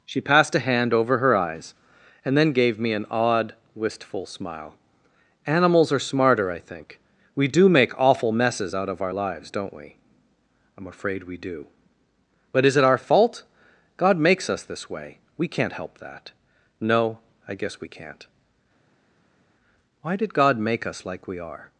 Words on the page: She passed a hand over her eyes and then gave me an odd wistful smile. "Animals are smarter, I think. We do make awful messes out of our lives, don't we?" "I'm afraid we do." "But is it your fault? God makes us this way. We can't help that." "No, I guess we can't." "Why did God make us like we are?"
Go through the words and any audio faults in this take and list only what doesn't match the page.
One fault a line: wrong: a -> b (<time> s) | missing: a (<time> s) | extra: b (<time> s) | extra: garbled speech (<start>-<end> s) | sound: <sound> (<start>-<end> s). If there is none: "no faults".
wrong: your -> our (12.8 s)